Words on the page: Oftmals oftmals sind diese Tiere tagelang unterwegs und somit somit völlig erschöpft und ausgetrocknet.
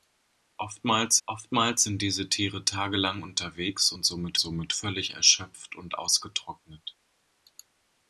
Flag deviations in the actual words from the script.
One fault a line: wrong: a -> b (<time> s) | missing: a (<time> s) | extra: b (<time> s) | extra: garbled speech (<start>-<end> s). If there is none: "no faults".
no faults